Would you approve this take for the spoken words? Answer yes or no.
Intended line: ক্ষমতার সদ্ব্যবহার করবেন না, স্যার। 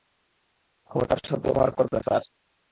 no